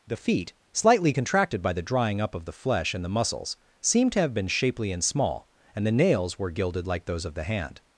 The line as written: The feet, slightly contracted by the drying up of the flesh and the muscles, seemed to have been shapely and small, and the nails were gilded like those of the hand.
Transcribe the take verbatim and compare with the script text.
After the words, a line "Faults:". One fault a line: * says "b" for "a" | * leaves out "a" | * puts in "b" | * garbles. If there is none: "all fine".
The feet, slightly contracted by the drying up of the flesh and the muscles, seemed to have been shapely and small, and the nails were gilded like those of the hand.
Faults:
all fine